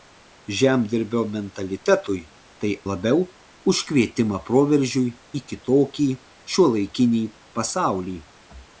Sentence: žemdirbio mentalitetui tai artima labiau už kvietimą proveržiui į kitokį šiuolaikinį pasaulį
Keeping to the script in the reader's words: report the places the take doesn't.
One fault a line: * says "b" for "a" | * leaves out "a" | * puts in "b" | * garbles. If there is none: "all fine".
* leaves out "artima"